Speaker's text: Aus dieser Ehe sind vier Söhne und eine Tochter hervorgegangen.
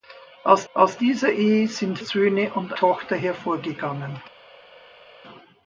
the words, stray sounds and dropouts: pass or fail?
fail